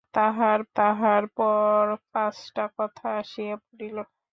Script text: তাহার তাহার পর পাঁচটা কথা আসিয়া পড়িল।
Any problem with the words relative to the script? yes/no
no